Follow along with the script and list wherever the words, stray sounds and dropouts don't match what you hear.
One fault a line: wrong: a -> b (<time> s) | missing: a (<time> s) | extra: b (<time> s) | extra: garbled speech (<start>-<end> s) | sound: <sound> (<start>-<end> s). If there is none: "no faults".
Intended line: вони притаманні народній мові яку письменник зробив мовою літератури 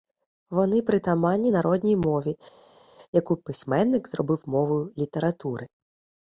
no faults